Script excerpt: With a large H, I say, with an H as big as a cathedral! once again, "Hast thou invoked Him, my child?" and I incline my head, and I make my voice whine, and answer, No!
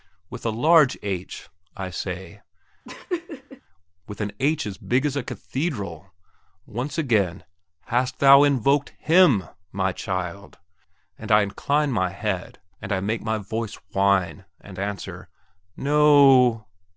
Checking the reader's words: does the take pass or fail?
pass